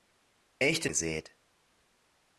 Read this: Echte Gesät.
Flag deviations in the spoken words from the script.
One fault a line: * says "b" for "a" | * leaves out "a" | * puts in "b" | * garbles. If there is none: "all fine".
all fine